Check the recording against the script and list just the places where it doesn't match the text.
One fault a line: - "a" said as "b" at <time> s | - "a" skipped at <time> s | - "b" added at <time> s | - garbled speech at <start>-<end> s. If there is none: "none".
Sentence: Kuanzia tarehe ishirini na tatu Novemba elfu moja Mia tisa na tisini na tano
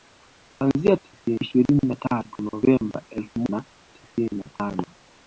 - "tarehe" said as "tisini" at 1.0 s
- "moja Mia tisa" skipped at 3.4 s